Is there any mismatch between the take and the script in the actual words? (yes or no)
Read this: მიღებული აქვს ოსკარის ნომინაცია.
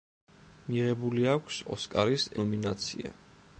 no